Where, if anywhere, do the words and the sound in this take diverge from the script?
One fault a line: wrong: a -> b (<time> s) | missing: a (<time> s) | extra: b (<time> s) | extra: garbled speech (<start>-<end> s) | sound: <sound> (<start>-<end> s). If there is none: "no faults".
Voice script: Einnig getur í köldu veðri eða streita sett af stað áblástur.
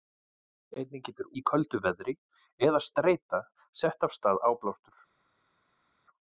no faults